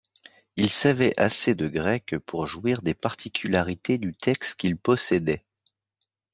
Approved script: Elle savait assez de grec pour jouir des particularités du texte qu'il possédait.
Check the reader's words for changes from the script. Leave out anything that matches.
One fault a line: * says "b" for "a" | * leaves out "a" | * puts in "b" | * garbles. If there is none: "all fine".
* says "Il" for "Elle"